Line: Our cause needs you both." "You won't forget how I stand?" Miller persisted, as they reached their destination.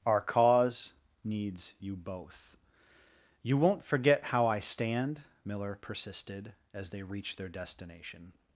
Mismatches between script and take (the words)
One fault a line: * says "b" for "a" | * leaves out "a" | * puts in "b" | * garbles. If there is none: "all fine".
all fine